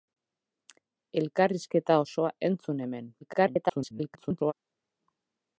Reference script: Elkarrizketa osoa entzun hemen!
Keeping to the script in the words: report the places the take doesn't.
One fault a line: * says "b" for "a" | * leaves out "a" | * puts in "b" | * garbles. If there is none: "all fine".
* garbles